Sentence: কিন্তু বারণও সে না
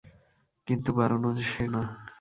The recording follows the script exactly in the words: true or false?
true